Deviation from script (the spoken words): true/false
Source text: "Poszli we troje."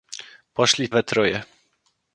false